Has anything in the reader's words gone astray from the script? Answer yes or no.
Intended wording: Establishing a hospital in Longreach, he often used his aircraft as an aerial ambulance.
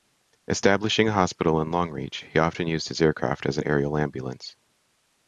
no